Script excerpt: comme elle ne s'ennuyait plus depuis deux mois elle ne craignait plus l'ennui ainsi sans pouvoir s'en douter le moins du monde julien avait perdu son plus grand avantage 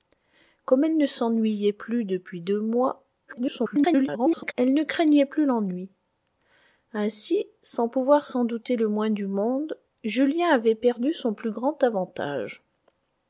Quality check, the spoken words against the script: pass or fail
fail